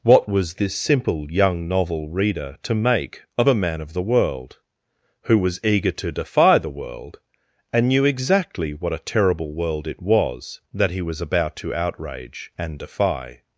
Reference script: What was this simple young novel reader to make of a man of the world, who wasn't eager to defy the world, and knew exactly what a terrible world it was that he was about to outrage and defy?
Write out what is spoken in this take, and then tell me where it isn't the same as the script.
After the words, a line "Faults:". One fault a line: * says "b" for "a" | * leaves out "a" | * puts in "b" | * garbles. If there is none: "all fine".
What was this simple young novel reader to make of a man of the world, who was eager to defy the world, and knew exactly what a terrible world it was that he was about to outrage and defy?
Faults:
* says "was" for "wasn't"